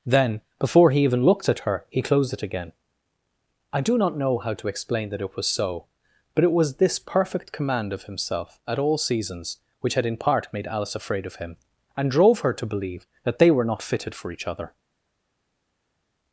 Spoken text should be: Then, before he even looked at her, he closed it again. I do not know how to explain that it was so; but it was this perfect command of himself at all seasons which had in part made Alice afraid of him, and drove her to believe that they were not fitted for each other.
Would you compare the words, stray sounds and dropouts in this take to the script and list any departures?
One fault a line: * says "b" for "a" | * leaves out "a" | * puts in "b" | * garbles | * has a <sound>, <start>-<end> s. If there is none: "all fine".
all fine